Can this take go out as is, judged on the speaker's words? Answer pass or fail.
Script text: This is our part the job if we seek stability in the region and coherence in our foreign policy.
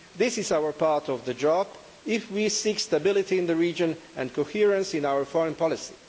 fail